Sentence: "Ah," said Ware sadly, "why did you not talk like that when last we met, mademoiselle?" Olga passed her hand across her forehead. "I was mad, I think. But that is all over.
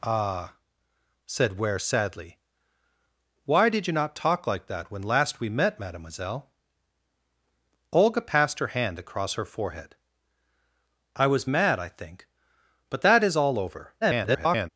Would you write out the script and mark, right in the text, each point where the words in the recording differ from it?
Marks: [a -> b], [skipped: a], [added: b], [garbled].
"Ah," said Ware sadly, "why did you not talk like that when last we met, mademoiselle?" Olga passed her hand across her forehead. "I was mad, I think. But that is all over. [garbled]